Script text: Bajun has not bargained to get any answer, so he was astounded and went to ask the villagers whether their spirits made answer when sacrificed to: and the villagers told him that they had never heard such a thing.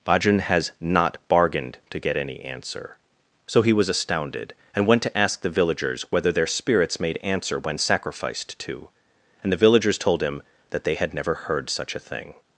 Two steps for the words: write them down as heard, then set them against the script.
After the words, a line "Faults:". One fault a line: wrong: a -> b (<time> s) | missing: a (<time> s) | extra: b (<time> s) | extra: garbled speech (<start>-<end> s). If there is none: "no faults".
Bajun has not bargained to get any answer, so he was astounded and went to ask the villagers whether their spirits made answer when sacrificed to: and the villagers told him that they had never heard such a thing.
Faults:
no faults